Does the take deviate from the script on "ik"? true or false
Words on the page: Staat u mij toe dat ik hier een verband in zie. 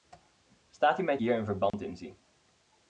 true